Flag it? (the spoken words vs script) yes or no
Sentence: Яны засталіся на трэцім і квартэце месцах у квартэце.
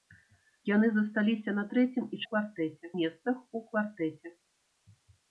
no